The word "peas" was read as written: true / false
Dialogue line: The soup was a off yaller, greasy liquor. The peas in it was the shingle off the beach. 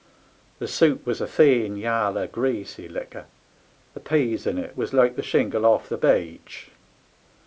true